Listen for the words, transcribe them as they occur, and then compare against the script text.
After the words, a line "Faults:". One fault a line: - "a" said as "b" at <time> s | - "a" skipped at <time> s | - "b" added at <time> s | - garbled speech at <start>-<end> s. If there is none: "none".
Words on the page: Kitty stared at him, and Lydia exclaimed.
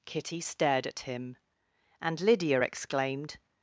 Kitty stared at him, and Lydia exclaimed.
Faults:
none